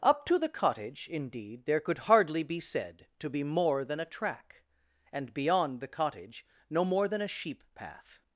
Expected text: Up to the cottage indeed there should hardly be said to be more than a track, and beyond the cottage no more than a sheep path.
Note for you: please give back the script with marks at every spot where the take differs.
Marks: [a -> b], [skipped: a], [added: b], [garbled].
Up to the cottage indeed there [should -> could] hardly be said to be more than a track, and beyond the cottage no more than a sheep path.